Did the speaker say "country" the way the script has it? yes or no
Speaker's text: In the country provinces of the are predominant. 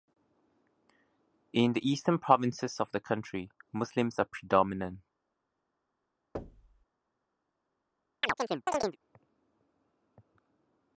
no